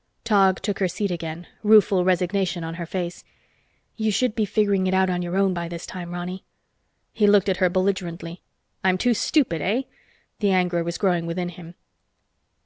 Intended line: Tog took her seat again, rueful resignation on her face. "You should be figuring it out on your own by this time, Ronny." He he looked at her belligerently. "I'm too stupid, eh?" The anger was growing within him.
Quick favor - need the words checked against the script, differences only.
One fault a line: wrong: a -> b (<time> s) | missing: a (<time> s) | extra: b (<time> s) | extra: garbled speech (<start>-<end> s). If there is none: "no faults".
missing: he (7.3 s)